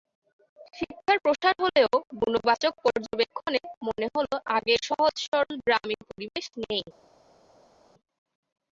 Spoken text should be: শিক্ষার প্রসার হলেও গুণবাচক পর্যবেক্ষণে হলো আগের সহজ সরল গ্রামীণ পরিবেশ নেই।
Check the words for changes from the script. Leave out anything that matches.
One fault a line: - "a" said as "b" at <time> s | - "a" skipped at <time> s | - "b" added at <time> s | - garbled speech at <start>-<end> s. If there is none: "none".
- "মনে" added at 3.9 s